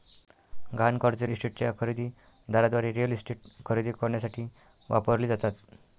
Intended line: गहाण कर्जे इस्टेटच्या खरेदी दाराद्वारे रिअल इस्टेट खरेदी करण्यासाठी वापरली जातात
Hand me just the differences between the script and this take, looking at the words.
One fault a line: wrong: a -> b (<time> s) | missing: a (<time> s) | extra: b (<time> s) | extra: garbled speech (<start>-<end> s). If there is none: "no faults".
no faults